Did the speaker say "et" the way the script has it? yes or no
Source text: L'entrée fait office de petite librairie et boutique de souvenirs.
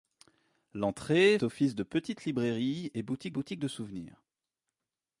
yes